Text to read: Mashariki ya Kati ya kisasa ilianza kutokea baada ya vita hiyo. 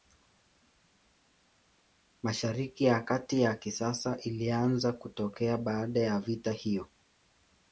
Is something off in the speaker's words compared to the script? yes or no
no